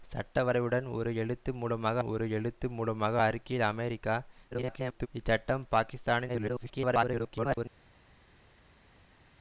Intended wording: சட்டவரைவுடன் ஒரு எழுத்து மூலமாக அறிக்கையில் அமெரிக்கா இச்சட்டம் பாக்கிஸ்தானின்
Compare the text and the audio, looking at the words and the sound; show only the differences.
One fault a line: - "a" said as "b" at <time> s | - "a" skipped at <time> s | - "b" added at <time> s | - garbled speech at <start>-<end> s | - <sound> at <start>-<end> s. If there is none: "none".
- "ஒரு எழுத்து மூலமாக" added at 2.0 s
- garbled speech at 4.5-5.1 s
- garbled speech at 6.3-7.7 s